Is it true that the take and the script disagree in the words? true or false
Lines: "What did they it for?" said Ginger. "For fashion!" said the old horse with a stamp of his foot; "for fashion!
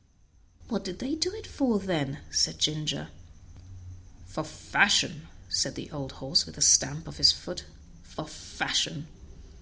true